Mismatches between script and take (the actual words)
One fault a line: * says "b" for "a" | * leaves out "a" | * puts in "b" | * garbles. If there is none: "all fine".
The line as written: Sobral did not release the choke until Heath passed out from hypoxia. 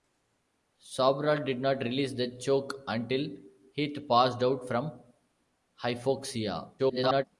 * garbles